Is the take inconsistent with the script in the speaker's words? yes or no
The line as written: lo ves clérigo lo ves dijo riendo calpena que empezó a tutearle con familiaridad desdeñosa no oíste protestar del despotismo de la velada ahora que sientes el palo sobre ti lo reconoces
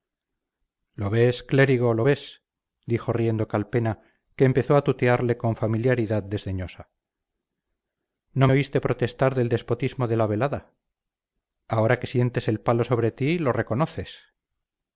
no